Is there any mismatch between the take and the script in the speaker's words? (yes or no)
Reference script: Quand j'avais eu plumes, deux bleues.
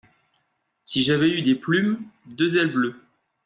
yes